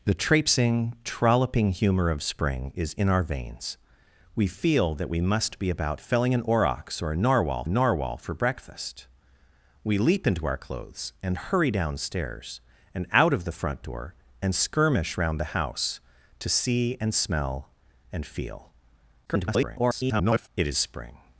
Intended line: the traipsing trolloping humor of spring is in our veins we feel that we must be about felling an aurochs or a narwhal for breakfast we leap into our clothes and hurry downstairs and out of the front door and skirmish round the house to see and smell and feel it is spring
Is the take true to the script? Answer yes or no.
no